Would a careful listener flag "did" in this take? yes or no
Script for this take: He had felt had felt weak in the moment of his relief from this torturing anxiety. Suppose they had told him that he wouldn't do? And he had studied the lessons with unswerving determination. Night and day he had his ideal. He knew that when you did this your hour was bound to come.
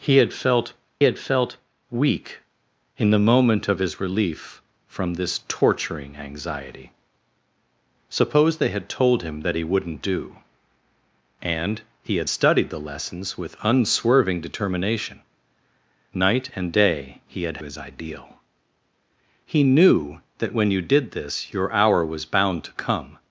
no